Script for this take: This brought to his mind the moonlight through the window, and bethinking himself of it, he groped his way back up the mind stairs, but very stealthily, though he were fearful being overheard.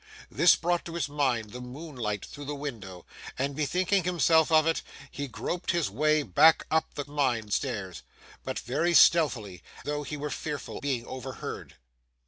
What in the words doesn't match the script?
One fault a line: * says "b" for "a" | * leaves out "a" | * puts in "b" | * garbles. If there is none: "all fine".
all fine